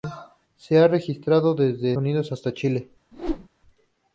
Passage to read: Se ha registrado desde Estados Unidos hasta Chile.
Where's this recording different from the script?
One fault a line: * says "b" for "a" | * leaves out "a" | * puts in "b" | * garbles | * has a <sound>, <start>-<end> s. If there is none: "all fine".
* leaves out "Estados"
* has a whoosh, 3.1-3.5 s